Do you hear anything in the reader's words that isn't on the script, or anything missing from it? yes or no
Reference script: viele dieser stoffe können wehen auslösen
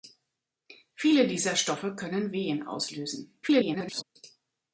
yes